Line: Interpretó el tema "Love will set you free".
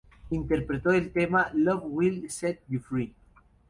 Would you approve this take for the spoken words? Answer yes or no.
yes